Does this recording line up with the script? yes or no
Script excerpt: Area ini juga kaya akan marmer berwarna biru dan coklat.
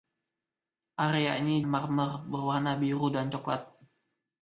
no